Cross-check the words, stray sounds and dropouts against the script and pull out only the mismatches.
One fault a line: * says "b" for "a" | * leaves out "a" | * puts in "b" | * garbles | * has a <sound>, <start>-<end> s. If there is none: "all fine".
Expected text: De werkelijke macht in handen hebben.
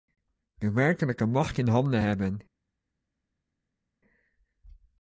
all fine